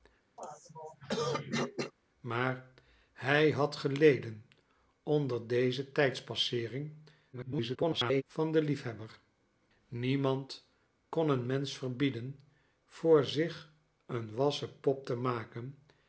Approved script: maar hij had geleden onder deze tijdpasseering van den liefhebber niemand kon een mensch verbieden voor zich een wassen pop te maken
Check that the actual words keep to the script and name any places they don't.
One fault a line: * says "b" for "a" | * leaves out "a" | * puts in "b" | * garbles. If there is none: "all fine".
* garbles